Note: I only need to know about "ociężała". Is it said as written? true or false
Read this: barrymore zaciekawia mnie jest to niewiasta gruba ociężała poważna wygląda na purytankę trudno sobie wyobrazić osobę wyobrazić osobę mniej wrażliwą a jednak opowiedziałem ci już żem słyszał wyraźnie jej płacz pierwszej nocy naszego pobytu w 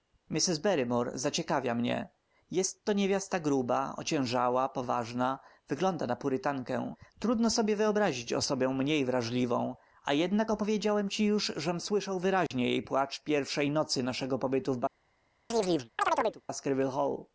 true